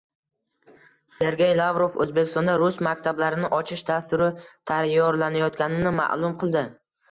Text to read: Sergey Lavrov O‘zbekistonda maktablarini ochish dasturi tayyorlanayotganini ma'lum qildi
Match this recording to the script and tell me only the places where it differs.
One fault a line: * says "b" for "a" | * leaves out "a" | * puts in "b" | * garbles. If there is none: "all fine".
* puts in "rus"